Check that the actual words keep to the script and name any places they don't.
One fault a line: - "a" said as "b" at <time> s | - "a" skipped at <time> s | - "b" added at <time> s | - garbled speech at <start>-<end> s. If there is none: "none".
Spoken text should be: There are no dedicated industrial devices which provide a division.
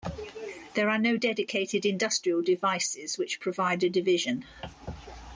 none